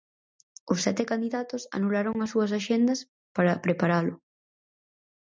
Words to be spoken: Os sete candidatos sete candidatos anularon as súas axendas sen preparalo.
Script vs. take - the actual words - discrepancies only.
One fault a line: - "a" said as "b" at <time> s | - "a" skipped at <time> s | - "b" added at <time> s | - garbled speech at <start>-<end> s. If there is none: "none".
- "sete candidatos" skipped at 1.6 s
- "sen" said as "para" at 3.4 s